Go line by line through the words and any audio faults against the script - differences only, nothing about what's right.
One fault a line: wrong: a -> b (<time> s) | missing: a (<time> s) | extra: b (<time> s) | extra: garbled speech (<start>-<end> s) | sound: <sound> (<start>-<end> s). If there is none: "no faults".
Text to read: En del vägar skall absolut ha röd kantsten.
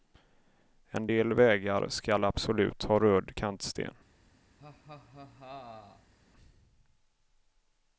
sound: laugh (4.6-6.1 s)